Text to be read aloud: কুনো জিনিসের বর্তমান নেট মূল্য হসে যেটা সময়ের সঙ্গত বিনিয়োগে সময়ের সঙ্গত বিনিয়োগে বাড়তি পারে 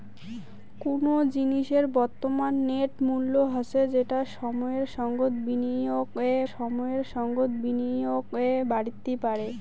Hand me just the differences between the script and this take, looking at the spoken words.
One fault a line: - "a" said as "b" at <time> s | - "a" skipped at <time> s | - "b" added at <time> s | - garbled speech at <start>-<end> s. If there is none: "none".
none